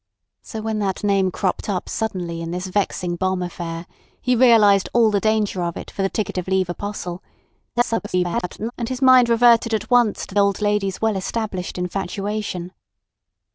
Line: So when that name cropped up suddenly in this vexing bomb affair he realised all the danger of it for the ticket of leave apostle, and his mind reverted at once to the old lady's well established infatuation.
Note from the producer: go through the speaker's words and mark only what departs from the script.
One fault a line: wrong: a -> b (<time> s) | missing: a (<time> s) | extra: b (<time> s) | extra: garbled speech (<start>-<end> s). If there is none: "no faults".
extra: garbled speech (7.7-8.7 s)
missing: the (10.3 s)